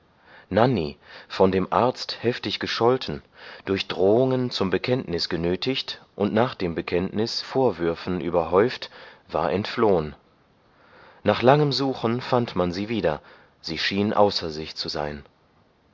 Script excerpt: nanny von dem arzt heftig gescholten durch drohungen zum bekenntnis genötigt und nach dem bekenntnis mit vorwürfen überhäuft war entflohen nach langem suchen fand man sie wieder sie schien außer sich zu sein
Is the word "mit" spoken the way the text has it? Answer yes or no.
no